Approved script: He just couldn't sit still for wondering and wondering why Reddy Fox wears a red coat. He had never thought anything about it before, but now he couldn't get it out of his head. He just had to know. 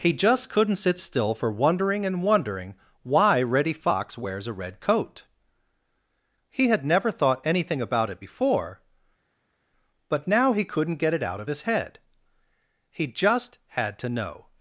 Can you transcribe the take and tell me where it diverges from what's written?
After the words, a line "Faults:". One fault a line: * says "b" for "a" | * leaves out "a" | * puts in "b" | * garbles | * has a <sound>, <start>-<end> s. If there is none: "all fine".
He just couldn't sit still for wondering and wondering why Reddy Fox wears a red coat. He had never thought anything about it before, but now he couldn't get it out of his head. He just had to know.
Faults:
all fine